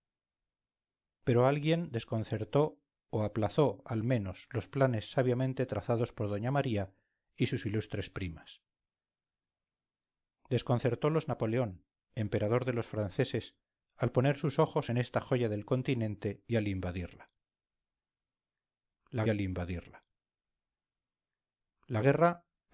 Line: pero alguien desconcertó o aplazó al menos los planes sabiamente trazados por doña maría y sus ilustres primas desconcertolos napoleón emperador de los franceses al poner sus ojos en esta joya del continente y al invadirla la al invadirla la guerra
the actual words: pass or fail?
pass